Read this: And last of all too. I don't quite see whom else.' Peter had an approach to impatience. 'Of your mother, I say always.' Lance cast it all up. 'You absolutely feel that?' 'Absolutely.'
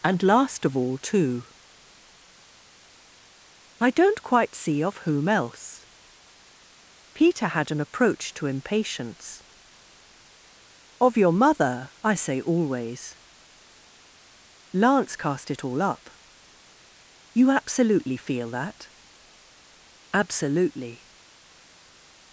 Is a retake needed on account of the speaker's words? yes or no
yes